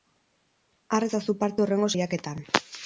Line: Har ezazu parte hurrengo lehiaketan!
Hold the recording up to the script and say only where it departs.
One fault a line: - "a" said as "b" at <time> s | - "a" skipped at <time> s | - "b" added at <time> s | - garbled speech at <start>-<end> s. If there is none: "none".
none